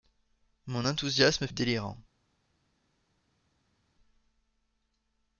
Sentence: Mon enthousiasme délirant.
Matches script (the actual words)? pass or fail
pass